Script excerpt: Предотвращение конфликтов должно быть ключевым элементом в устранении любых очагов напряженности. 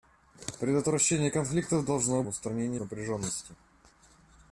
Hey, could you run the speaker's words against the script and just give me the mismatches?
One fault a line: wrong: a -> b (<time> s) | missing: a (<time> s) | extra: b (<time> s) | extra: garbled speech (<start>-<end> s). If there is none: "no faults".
missing: быть ключевым элементом (2.2 s)
missing: любых очагов (2.8 s)